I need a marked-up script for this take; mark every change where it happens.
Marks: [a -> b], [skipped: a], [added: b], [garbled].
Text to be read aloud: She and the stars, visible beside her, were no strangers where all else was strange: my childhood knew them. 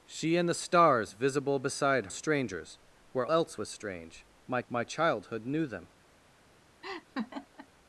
She and the stars, visible beside [skipped: her, were no] strangers where [skipped: all] else was strange: my [added: my] childhood knew them.